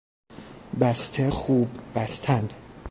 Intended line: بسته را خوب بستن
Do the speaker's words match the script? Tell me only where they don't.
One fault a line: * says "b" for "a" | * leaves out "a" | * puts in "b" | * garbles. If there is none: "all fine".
* leaves out "را"